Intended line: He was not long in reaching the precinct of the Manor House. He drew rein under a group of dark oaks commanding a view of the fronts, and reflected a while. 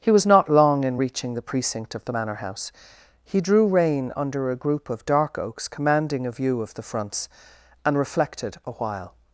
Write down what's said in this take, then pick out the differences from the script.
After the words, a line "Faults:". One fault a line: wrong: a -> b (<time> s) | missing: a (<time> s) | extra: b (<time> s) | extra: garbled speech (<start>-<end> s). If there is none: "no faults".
He was not long in reaching the precinct of the Manor House. He drew rein under a group of dark oaks commanding a view of the fronts, and reflected a while.
Faults:
no faults